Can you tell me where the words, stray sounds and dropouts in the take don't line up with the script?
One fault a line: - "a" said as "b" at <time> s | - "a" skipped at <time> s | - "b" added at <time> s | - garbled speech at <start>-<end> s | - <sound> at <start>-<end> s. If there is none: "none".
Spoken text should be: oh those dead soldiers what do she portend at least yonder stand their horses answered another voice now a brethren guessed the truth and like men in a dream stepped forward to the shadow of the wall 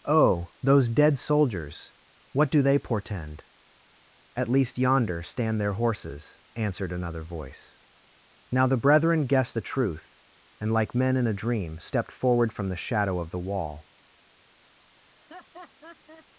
- "she" said as "they" at 2.6 s
- "a" said as "the" at 8.6 s
- "to" said as "from" at 12.5 s
- laugh at 15.1-16.3 s